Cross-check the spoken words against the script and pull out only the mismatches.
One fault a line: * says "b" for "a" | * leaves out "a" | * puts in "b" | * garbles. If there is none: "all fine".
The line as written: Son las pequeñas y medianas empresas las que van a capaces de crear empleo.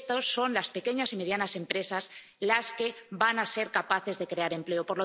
* puts in "ser"